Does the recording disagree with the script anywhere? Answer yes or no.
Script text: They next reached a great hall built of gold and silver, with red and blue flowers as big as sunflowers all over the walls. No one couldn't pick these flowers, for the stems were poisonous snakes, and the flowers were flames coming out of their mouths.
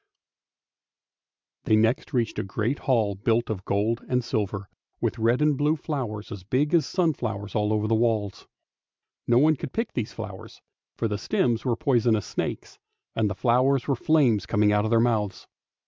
yes